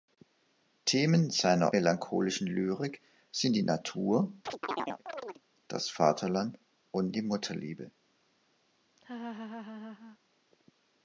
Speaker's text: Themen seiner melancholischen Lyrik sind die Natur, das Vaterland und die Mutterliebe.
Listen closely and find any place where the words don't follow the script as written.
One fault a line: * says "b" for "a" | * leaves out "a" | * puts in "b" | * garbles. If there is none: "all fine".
all fine